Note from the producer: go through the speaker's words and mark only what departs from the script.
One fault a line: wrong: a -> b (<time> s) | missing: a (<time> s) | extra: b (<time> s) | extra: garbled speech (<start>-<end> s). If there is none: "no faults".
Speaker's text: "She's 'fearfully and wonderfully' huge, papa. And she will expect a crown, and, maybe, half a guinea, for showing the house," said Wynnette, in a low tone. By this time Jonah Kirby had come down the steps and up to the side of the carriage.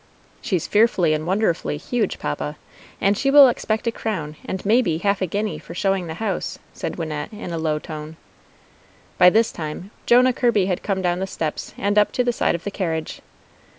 no faults